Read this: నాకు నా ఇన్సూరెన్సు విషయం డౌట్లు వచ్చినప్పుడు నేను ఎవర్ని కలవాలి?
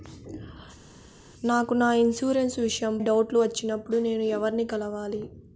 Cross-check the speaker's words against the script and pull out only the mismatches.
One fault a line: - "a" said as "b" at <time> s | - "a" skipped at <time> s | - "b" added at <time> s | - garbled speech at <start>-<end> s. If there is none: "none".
none